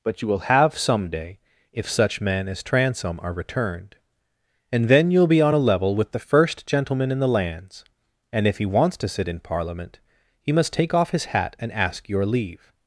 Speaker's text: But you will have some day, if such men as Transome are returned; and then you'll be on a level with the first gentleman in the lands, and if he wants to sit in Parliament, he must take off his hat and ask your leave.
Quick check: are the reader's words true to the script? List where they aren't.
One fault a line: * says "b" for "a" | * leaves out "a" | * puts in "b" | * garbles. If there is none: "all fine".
all fine